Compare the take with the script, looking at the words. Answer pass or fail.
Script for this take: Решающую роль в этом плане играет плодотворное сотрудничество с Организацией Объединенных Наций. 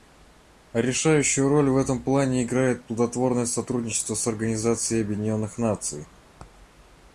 pass